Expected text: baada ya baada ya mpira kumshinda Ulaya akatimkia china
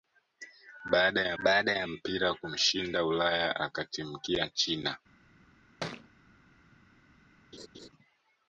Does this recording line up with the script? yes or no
yes